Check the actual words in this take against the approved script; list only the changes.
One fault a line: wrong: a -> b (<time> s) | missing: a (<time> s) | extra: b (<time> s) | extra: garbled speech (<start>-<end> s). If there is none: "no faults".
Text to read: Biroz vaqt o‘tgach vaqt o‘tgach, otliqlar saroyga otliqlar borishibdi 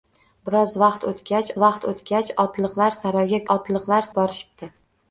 no faults